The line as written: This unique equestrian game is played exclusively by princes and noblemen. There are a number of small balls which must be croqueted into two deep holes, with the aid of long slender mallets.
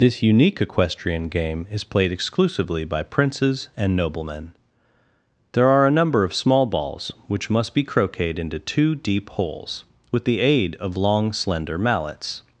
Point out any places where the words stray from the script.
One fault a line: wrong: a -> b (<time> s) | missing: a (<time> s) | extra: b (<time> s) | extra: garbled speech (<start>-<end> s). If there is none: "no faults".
no faults